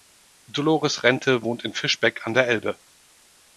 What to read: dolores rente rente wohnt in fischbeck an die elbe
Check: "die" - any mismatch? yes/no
yes